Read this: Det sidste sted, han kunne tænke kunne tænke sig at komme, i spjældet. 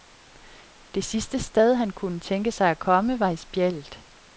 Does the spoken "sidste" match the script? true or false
true